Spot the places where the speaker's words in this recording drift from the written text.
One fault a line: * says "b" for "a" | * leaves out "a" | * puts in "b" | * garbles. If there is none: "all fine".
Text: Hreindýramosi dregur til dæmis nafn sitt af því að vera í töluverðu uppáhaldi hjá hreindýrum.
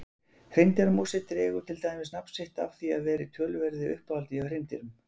all fine